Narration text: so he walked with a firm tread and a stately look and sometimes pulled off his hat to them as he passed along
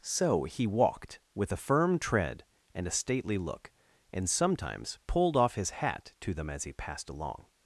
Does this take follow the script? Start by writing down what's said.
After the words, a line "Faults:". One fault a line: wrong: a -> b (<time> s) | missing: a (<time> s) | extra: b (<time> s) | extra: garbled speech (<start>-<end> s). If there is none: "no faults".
so he walked with a firm tread and a stately look and sometimes pulled off his hat to them as he passed along
Faults:
no faults